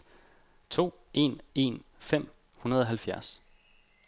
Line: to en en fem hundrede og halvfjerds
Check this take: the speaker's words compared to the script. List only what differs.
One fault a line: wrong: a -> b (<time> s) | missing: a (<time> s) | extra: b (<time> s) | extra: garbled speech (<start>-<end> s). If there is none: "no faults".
no faults